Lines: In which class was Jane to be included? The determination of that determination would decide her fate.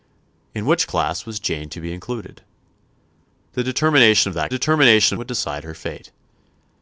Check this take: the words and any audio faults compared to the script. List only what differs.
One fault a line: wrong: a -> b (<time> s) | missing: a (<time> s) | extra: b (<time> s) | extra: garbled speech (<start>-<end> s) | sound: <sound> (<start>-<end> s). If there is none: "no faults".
no faults